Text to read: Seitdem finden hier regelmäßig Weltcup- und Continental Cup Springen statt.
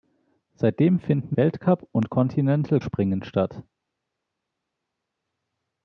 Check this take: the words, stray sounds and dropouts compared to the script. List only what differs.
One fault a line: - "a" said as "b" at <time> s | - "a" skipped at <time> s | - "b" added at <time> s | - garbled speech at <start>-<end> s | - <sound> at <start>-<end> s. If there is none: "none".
- "hier regelmäßig" skipped at 1.4 s
- "Cup" skipped at 2.8 s